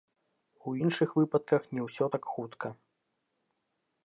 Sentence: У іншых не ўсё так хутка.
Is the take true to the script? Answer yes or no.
no